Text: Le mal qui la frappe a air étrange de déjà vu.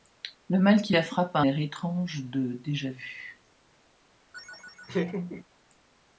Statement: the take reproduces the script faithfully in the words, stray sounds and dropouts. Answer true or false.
false